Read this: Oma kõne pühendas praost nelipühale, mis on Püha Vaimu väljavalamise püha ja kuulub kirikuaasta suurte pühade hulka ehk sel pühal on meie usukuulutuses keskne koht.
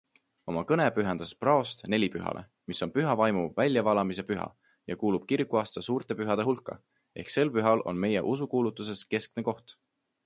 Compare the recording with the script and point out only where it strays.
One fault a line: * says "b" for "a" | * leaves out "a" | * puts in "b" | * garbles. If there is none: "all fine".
all fine